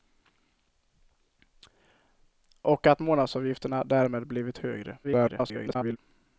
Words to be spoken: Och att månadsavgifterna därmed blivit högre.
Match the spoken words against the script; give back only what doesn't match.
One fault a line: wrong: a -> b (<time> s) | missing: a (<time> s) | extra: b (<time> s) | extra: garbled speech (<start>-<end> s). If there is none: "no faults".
extra: garbled speech (5.0-6.0 s)